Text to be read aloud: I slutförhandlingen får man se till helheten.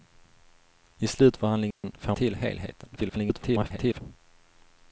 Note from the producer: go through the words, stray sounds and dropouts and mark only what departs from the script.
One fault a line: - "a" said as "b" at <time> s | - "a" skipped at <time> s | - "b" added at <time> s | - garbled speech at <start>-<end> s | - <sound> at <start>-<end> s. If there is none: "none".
- dropout at 1.7-1.8 s
- "man se" skipped at 2.2 s
- garbled speech at 3.0-4.0 s